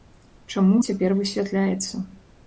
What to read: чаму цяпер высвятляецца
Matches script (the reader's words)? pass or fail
pass